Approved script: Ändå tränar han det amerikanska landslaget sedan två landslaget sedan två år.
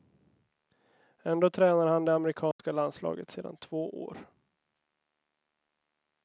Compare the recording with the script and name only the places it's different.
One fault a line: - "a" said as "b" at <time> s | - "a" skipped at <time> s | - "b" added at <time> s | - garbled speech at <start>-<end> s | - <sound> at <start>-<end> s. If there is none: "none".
- dropout at 2.5-2.6 s
- "landslaget sedan två" skipped at 4.0 s